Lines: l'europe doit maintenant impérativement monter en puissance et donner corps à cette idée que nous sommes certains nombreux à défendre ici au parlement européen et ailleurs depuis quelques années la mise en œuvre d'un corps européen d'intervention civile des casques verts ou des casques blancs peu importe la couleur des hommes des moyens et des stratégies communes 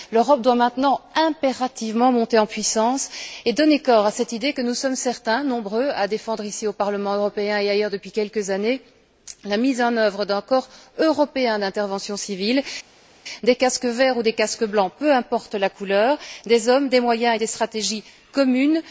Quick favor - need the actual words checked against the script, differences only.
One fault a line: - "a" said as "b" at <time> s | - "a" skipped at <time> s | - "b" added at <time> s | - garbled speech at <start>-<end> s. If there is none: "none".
none